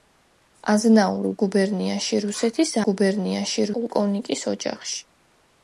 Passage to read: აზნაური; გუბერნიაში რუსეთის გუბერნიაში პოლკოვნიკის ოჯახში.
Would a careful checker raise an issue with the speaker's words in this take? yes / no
no